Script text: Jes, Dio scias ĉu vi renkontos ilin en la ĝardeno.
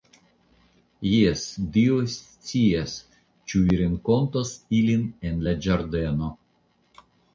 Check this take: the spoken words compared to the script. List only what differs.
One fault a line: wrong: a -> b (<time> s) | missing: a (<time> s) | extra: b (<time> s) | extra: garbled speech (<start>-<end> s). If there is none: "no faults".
no faults